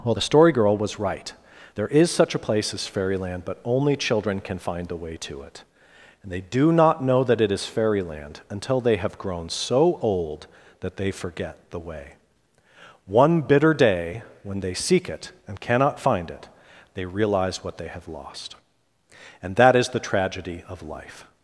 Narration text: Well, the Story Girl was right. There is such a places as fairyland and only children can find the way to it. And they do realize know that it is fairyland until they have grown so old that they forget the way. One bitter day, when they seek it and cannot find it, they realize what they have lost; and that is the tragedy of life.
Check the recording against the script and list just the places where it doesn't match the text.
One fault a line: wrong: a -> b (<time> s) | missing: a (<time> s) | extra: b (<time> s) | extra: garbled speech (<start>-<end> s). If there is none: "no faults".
wrong: places -> place (2.4 s)
wrong: and -> but (3.4 s)
wrong: realize -> not (6.7 s)